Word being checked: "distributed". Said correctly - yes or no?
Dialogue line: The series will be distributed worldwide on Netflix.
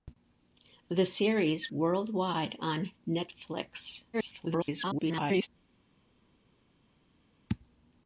no